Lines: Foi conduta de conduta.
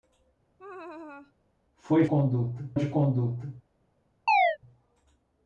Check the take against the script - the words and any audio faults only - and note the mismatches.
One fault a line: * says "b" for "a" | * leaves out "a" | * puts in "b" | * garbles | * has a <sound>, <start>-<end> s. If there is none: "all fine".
* has a laugh, 0.6-1.3 s
* has a chirp, 4.3-4.6 s